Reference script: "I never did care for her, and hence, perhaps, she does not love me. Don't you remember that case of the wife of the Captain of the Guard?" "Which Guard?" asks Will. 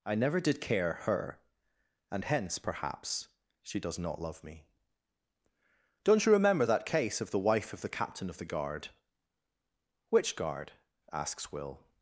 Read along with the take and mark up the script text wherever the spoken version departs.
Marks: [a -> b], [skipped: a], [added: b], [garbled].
"I never did care [skipped: for] her, and hence, perhaps, she does not love me. Don't you remember that case of the wife of the Captain of the Guard?" "Which Guard?" asks Will.